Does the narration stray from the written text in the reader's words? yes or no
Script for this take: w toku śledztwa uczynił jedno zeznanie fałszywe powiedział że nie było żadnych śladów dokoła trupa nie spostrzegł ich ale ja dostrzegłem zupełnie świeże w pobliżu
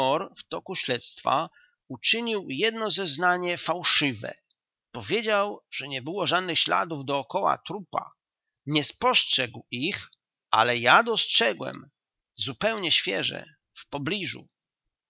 no